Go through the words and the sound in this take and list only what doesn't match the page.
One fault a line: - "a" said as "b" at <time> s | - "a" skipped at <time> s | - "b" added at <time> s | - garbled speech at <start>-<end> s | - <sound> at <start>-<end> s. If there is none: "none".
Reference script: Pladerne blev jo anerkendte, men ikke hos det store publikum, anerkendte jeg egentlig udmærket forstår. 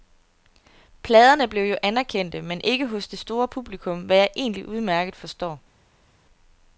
- "anerkendte" said as "hvad" at 4.0 s